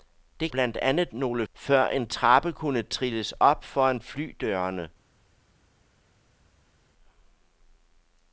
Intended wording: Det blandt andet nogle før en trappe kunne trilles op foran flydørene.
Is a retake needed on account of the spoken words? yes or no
no